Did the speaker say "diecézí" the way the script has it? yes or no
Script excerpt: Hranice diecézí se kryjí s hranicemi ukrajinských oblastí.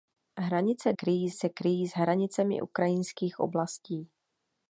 no